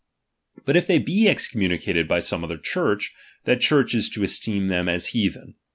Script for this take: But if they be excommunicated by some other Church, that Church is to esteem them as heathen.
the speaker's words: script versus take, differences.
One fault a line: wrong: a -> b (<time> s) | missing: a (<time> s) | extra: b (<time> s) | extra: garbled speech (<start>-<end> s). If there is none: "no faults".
no faults